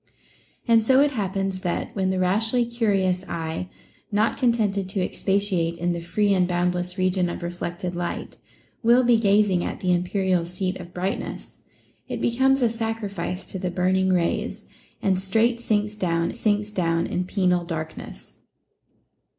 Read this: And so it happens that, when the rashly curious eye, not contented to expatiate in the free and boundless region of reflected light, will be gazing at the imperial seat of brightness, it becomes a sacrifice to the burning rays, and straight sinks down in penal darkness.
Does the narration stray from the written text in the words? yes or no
yes